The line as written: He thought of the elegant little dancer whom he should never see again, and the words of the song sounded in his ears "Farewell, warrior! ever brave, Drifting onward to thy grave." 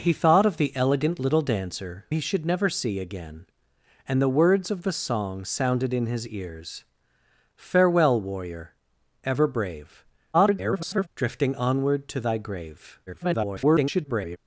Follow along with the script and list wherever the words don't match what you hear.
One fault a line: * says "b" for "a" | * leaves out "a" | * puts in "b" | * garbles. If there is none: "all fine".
* leaves out "whom"
* garbles
* garbles